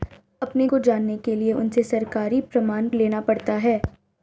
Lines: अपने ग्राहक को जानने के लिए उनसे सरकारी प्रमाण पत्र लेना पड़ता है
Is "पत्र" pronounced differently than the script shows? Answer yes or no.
yes